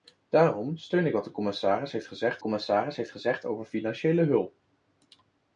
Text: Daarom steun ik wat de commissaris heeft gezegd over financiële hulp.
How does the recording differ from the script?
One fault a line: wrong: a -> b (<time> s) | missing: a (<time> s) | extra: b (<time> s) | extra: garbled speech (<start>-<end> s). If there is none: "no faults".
extra: commissaris heeft gezegd (2.4 s)